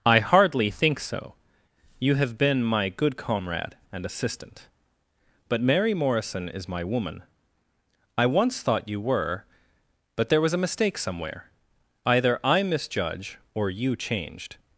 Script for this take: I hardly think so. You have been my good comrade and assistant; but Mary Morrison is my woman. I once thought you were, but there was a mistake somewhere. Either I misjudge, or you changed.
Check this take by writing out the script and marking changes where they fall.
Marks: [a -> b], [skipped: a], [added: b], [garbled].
I hardly think so. You have been my good comrade and assistant; but Mary Morrison is my woman. I once thought you were, but there was a mistake somewhere. Either I misjudge, or you changed.